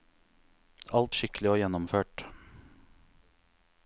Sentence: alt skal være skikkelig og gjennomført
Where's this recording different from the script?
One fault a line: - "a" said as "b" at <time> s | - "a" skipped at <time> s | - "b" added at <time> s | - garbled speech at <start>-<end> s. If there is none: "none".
- "skal være" skipped at 1.1 s